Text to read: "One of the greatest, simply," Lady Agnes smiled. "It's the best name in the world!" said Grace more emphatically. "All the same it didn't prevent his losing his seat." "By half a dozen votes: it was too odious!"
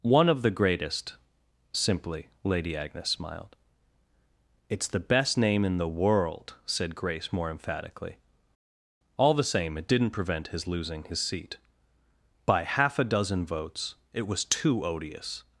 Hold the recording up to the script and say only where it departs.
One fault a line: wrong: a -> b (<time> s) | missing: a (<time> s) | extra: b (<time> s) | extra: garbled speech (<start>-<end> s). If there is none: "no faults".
no faults